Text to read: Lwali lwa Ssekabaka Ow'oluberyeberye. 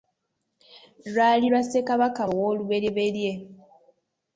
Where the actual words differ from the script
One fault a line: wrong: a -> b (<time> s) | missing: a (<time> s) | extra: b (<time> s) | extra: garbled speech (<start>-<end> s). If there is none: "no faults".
no faults